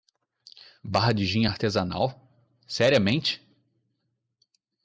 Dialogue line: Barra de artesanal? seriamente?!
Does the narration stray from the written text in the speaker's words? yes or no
yes